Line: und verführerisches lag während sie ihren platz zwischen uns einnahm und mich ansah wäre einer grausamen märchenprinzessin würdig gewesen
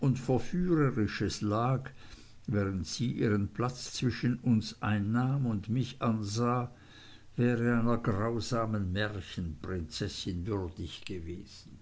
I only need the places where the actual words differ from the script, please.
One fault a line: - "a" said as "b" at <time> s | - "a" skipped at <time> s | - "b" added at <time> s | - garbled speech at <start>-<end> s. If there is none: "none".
none